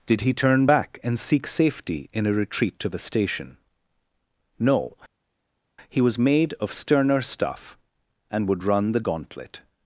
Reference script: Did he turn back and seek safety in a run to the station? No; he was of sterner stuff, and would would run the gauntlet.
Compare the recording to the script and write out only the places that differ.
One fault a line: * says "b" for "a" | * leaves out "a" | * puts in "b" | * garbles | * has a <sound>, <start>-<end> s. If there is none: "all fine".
* says "retreat" for "run"
* puts in "made"
* leaves out "would"